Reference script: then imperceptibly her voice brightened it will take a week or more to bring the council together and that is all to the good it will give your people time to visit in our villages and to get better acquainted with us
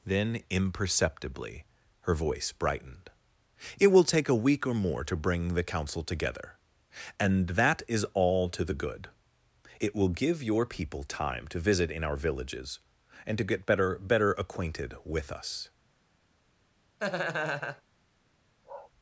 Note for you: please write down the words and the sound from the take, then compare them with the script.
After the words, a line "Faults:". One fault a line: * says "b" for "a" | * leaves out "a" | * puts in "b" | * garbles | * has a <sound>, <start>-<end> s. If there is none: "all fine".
then imperceptibly her voice brightened it will take a week or more to bring the council together and that is all to the good it will give your people time to visit in our villages and to get better better acquainted with us
Faults:
* puts in "better"
* has a laugh, 17.0-17.8 s
* has a bark, 18.6-18.9 s